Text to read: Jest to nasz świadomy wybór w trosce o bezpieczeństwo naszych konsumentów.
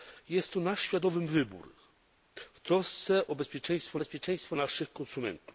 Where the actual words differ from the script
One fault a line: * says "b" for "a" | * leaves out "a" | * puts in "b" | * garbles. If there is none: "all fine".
* puts in "bezpieczeństwo"